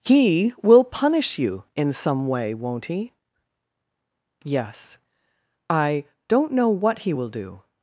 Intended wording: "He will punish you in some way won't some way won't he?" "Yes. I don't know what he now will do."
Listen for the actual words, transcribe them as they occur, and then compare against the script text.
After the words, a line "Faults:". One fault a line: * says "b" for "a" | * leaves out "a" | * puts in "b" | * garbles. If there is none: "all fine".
"He will punish you in some way won't he?" "Yes. I don't know what he will do."
Faults:
* leaves out "some way won't"
* leaves out "now"